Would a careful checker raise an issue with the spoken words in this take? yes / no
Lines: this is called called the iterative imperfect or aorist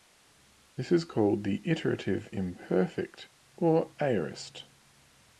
yes